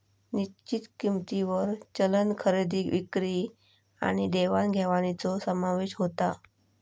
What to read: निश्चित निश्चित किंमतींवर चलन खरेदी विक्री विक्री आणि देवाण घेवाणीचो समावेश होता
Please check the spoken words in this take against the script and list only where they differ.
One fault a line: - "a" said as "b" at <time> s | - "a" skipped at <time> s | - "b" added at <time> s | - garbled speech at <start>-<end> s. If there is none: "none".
- "निश्चित" skipped at 0.9 s
- "विक्री" skipped at 3.5 s